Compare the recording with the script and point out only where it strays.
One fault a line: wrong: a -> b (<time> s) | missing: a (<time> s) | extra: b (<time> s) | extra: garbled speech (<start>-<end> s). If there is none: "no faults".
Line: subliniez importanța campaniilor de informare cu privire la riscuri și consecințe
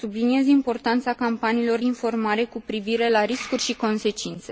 missing: de (1.8 s)